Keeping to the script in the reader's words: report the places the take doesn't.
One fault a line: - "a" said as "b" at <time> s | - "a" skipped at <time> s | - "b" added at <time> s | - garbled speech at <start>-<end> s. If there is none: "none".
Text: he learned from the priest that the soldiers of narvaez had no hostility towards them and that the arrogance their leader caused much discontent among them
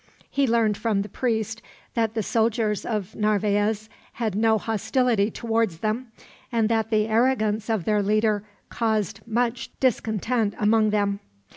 - "of" added at 7.7 s